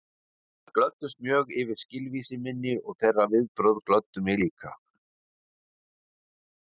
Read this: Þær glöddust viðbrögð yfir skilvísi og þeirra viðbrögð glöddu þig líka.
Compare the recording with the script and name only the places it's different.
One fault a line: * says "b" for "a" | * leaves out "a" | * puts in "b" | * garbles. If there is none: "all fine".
* says "mjög" for "viðbrögð"
* puts in "minni"
* says "mig" for "þig"